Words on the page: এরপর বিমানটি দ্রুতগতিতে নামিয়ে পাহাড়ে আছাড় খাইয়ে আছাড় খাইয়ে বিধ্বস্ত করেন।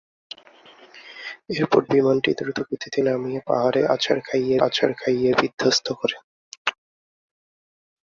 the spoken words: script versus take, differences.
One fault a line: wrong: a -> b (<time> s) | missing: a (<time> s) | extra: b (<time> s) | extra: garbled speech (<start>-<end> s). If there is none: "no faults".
no faults